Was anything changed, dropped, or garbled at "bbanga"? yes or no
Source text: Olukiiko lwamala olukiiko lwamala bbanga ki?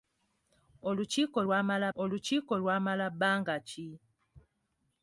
no